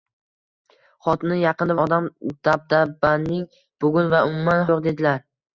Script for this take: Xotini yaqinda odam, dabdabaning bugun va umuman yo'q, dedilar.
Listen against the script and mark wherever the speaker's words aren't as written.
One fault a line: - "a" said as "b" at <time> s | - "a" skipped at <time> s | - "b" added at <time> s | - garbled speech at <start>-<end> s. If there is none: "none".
none